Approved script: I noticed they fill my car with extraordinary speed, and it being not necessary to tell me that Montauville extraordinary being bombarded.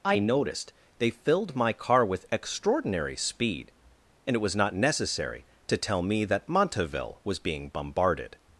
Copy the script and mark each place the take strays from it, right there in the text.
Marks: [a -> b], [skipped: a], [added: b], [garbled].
I noticed they [fill -> filled] my car with extraordinary speed, and it [being -> was] not necessary to tell me that Montauville [extraordinary -> was] being bombarded.